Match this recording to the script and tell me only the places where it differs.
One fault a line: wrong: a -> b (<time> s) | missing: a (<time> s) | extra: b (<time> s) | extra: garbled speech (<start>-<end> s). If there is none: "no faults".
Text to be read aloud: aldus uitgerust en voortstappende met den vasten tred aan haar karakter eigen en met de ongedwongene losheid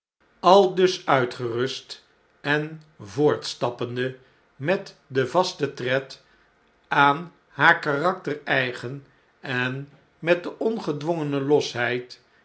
no faults